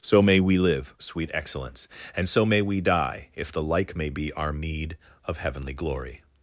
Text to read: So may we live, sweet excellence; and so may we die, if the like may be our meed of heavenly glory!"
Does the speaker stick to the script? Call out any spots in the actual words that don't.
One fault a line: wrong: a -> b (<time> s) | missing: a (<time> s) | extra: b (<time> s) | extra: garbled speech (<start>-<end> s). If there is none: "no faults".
no faults